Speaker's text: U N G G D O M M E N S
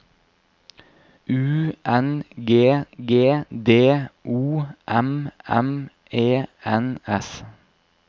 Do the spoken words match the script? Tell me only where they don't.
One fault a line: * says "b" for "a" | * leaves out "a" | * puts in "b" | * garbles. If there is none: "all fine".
all fine